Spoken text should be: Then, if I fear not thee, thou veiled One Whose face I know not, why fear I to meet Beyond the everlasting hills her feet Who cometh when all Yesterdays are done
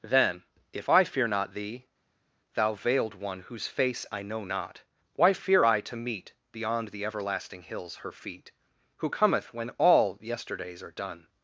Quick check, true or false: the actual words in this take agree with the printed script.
true